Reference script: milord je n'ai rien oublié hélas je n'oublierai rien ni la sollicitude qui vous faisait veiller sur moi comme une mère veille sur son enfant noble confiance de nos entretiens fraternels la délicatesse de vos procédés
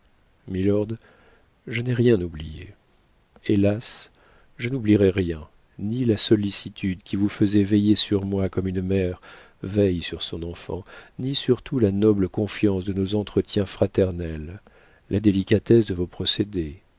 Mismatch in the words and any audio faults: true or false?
true